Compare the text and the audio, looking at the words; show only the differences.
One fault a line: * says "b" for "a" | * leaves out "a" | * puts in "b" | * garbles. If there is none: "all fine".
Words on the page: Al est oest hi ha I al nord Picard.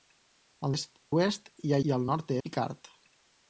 all fine